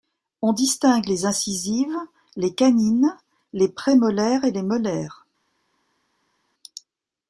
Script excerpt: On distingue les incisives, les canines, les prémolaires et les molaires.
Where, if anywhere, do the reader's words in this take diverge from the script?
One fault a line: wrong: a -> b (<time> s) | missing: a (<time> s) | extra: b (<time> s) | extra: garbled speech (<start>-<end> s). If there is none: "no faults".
no faults